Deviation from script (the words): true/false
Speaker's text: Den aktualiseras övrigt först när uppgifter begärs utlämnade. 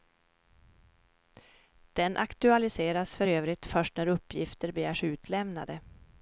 true